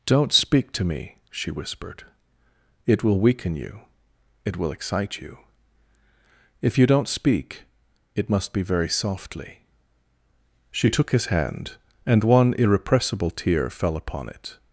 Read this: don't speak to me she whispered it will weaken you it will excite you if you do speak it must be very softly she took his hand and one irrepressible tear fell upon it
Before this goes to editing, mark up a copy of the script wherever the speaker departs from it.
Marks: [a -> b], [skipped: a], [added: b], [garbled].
don't speak to me she whispered it will weaken you it will excite you if you [do -> don't] speak it must be very softly she took his hand and one irrepressible tear fell upon it